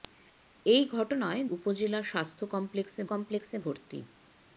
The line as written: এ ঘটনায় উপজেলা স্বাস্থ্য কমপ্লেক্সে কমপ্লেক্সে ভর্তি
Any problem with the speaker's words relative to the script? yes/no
no